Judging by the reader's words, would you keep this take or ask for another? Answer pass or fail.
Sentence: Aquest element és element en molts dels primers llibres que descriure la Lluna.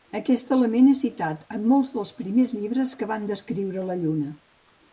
fail